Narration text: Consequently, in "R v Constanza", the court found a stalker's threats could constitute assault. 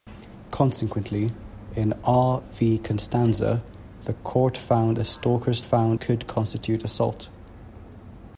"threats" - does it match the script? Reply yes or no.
no